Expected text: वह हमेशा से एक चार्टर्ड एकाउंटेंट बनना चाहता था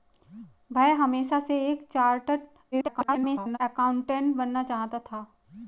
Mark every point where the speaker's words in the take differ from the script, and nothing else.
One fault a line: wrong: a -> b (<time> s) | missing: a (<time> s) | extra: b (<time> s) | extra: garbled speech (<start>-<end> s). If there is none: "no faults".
extra: garbled speech (2.7-3.6 s)